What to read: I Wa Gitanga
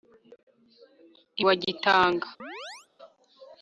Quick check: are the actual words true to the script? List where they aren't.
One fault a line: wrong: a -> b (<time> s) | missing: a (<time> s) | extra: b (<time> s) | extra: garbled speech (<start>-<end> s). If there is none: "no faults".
no faults